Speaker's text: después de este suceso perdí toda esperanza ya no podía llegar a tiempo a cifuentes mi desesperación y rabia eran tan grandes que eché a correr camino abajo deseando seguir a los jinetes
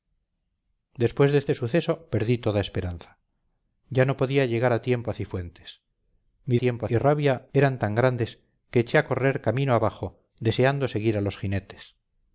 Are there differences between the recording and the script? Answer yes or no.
yes